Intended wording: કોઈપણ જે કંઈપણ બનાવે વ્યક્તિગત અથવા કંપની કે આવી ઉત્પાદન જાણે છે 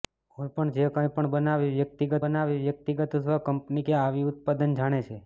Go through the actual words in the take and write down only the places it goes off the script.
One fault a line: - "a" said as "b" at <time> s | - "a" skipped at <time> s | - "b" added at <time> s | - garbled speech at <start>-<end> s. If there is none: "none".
- "બનાવે વ્યક્તિગત" added at 2.2 s